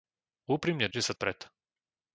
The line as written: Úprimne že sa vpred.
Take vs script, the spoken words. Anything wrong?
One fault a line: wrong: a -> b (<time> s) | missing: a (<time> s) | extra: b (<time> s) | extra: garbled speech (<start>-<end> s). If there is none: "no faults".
no faults